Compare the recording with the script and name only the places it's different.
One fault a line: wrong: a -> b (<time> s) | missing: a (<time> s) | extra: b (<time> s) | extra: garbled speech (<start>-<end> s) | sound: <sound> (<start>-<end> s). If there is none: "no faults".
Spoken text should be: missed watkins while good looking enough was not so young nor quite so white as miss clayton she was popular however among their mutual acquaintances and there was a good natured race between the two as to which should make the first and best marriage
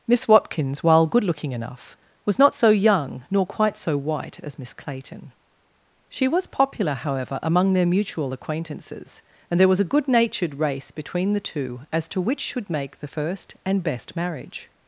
wrong: missed -> miss (0.1 s)